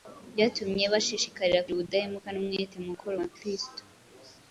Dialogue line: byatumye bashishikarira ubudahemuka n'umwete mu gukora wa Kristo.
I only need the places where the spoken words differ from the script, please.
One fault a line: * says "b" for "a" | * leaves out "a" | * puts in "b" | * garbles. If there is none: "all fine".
all fine